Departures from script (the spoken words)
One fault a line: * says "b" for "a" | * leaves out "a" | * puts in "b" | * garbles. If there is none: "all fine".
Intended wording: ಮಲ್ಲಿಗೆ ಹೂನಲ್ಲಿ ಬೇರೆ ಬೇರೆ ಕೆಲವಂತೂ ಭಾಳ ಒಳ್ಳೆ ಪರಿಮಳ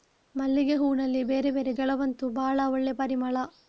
all fine